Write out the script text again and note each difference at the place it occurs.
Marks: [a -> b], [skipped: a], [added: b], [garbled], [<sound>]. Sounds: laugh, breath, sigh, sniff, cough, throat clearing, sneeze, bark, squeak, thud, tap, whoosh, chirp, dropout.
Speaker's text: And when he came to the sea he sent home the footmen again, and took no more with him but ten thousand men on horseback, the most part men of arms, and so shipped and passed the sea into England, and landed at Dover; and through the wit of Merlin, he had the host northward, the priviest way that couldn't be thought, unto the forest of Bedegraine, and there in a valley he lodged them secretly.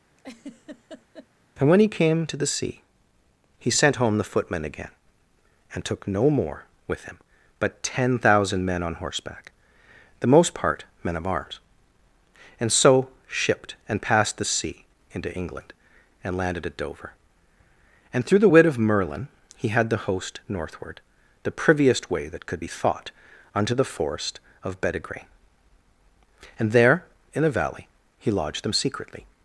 [laugh] And when he came to the sea he sent home the footmen again, and took no more with him but ten thousand men on horseback, the most part men of arms, and so shipped and passed the sea into England, and landed at Dover; and through the wit of Merlin, he had the host northward, the priviest way that [couldn't -> could] be thought, unto the forest of Bedegraine, and there in a valley he lodged them secretly.